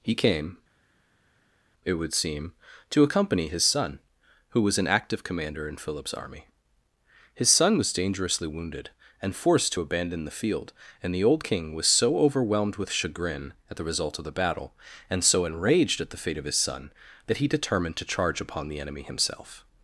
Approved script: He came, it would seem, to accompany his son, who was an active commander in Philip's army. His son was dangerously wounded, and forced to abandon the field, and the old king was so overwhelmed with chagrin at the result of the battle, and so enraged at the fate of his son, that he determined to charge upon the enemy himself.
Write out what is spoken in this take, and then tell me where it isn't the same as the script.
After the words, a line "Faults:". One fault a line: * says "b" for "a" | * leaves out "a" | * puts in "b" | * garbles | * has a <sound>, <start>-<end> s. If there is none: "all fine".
He came, it would seem, to accompany his son, who was an active commander in Philip's army. His son was dangerously wounded, and forced to abandon the field, and the old king was so overwhelmed with chagrin at the result of the battle, and so enraged at the fate of his son, that he determined to charge upon the enemy himself.
Faults:
all fine